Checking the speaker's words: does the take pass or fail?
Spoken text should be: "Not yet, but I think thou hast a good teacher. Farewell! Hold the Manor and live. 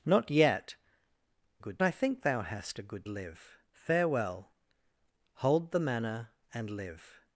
fail